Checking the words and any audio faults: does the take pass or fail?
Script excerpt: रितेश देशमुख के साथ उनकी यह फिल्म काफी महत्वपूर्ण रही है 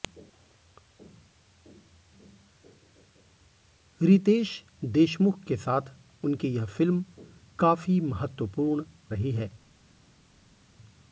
pass